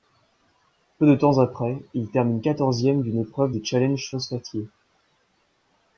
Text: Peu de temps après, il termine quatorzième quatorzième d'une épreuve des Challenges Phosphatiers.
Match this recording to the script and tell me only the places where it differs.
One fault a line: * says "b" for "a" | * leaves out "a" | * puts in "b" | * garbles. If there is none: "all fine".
* leaves out "quatorzième"